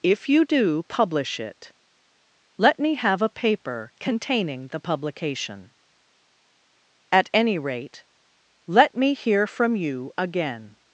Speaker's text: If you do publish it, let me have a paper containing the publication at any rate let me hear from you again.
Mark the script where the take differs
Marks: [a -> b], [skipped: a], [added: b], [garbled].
If you do publish it, let me have a paper containing the publication at any rate let me hear from you again.